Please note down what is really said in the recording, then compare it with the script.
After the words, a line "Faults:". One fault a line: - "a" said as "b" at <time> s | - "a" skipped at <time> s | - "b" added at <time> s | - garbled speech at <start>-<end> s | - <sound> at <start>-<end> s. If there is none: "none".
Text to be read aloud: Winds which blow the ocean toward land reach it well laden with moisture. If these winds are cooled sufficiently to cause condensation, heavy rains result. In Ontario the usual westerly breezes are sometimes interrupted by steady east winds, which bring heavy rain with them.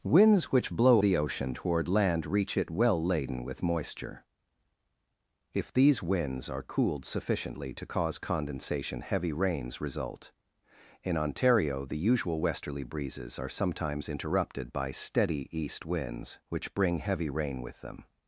Winds which blow the ocean toward land reach it well laden with moisture. If these winds are cooled sufficiently to cause condensation, heavy rains result. In Ontario the usual westerly breezes are sometimes interrupted by steady east winds, which bring heavy rain with them.
Faults:
none